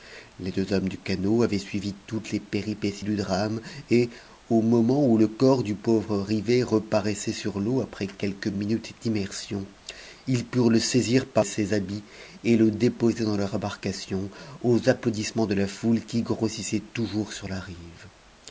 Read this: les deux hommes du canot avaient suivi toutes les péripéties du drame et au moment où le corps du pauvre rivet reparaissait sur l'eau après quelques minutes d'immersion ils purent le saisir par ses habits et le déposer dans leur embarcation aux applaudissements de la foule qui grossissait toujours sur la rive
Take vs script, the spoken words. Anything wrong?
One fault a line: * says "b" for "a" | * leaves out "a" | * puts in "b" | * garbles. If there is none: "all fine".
all fine